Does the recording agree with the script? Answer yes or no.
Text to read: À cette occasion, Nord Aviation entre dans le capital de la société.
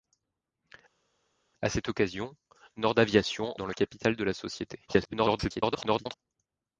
no